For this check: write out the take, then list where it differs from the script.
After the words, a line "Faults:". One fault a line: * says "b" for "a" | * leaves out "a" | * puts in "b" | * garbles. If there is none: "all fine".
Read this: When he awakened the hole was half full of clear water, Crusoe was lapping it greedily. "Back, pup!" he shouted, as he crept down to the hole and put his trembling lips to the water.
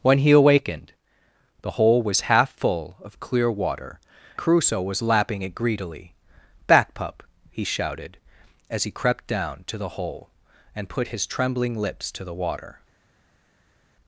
When he awakened the hole was half full of clear water, Crusoe was lapping it greedily. "Back, pup!" he shouted, as he crept down to the hole and put his trembling lips to the water.
Faults:
all fine